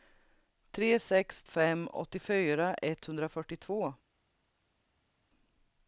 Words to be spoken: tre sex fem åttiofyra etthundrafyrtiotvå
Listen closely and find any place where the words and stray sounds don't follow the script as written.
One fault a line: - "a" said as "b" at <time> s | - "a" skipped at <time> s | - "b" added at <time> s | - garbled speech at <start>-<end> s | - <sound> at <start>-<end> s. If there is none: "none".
none